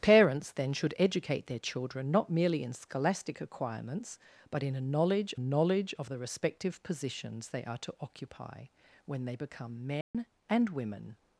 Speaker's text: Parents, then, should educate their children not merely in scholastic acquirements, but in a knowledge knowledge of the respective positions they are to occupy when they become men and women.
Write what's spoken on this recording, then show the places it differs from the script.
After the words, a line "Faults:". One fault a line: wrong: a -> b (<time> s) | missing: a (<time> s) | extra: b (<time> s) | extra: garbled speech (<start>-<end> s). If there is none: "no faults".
Parents, then, should educate their children not merely in scholastic acquirements, but in a knowledge knowledge of the respective positions they are to occupy when they become men and women.
Faults:
no faults